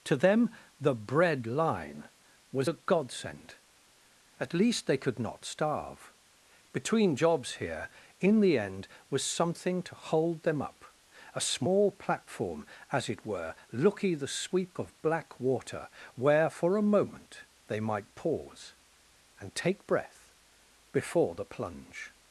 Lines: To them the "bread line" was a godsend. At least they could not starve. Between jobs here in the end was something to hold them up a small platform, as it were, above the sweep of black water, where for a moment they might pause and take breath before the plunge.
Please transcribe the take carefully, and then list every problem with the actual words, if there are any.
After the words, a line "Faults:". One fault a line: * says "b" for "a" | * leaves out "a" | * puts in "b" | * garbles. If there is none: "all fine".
To them the "bread line" was a godsend. At least they could not starve. Between jobs here in the end was something to hold them up a small platform, as it were, looky the sweep of black water, where for a moment they might pause and take breath before the plunge.
Faults:
* says "looky" for "above"